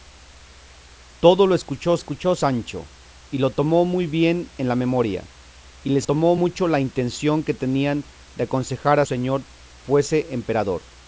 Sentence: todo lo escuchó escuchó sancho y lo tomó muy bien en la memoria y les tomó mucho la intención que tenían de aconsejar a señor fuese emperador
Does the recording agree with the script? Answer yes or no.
yes